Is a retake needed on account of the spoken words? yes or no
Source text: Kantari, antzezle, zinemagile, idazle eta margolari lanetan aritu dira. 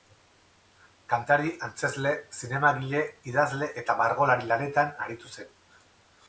yes